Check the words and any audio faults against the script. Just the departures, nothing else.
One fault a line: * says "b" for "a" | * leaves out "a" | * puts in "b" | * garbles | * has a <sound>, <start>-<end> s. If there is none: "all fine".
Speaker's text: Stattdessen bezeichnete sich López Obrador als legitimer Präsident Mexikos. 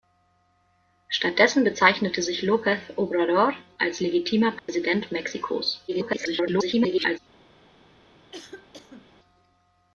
* has a dropout, 4.6-4.7 s
* garbles
* has a cough, 8.3-9.1 s